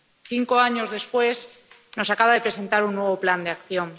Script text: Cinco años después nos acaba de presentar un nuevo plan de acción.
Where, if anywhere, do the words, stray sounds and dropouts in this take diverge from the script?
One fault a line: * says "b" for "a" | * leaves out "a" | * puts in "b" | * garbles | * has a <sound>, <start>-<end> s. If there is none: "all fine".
all fine